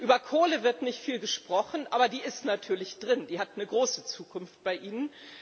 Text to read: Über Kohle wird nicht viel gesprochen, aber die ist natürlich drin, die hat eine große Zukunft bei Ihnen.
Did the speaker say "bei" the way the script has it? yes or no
yes